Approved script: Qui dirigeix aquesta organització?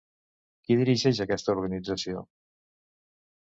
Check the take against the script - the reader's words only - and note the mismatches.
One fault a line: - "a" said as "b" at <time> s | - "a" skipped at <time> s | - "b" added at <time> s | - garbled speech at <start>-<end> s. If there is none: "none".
none